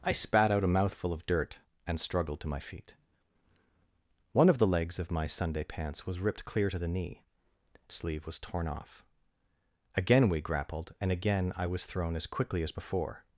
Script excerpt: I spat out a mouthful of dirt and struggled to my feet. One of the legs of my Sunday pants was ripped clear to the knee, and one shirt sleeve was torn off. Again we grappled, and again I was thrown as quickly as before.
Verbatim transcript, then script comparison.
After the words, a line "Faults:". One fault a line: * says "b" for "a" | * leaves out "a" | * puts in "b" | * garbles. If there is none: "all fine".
I spat out a mouthful of dirt and struggled to my feet. One of the legs of my Sunday pants was ripped clear to the knee, sleeve was torn off. Again we grappled, and again I was thrown as quickly as before.
Faults:
* leaves out "and one shirt"